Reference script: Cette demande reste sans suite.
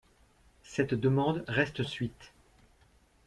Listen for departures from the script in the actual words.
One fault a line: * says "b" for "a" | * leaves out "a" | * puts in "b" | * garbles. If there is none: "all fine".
* leaves out "sans"